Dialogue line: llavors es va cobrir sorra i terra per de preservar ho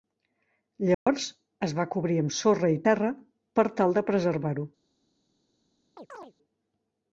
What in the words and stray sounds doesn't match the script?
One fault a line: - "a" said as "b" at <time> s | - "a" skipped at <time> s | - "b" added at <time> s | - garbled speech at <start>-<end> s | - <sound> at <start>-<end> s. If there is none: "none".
- dropout at 0.9-1.1 s
- "amb" added at 2.2 s
- "tal" added at 3.8 s
- chirp at 6.0-6.3 s